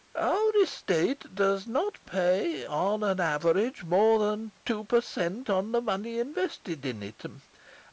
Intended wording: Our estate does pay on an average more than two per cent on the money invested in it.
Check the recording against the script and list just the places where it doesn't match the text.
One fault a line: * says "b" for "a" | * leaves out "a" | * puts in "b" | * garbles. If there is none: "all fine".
* puts in "not"